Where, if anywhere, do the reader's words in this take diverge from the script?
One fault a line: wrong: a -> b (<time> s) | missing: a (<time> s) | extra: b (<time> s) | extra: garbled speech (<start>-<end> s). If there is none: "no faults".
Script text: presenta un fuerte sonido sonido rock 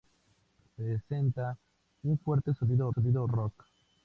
no faults